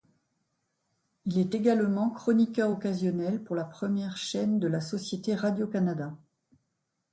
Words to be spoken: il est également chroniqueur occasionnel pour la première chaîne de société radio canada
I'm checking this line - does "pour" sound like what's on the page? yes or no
yes